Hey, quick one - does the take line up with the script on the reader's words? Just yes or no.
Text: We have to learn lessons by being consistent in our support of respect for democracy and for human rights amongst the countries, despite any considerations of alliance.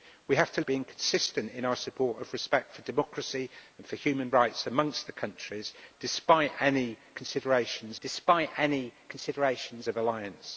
no